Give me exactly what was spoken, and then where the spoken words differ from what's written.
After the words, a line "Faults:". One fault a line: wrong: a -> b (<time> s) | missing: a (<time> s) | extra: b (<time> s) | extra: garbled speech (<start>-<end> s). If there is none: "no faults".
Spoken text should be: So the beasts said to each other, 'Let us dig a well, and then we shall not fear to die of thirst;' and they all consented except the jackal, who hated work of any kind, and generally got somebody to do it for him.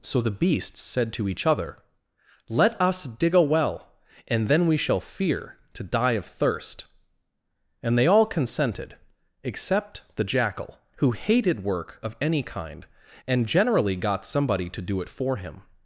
So the beasts said to each other, 'Let us dig a well, and then we shall fear to die of thirst;' and they all consented except the jackal, who hated work of any kind, and generally got somebody to do it for him.
Faults:
missing: not (5.0 s)